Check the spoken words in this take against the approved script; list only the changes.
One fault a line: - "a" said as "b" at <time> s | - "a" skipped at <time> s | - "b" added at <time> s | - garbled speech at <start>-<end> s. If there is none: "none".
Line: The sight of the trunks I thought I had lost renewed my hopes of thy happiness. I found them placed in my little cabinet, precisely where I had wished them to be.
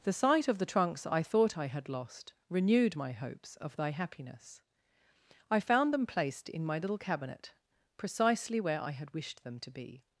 none